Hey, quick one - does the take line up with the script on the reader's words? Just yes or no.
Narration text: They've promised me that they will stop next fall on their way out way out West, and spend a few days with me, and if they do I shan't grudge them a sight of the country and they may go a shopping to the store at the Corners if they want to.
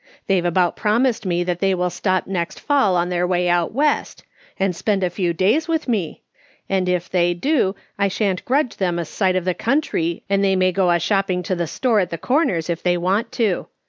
no